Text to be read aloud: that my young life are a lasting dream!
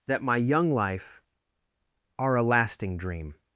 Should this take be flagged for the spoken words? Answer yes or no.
no